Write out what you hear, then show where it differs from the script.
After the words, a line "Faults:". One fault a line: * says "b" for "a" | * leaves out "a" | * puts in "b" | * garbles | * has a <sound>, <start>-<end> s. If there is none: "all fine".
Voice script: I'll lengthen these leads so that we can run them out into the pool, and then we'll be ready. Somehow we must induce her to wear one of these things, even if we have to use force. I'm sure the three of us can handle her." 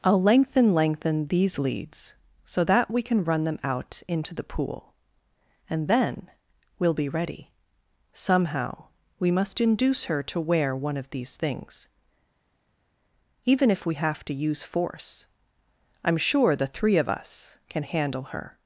I'll lengthen lengthen these leads so that we can run them out into the pool, and then we'll be ready. Somehow we must induce her to wear one of these things, even if we have to use force. I'm sure the three of us can handle her."
Faults:
* puts in "lengthen"